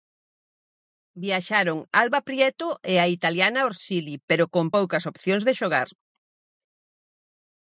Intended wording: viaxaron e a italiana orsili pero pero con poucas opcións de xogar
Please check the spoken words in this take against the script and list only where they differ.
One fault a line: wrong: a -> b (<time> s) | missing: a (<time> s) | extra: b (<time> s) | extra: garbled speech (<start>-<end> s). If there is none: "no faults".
extra: alba prieto (2.0 s)
missing: pero (4.5 s)